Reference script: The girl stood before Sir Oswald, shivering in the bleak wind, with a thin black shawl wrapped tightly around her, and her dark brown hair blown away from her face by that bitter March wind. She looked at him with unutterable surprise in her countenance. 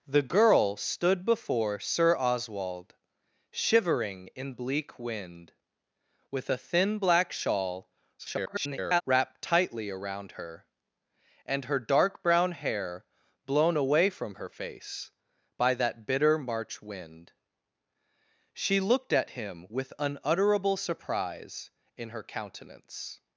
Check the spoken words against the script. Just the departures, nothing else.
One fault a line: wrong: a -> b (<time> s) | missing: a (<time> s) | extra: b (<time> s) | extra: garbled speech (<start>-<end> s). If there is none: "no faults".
missing: the (4.5 s)
extra: garbled speech (8.2-9.0 s)